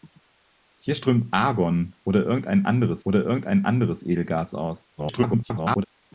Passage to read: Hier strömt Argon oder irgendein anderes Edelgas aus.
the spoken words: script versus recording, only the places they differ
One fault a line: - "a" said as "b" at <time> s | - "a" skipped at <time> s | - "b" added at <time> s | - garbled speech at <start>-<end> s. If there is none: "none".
- "oder irgendein anderes" added at 3.0 s
- garbled speech at 5.0-5.8 s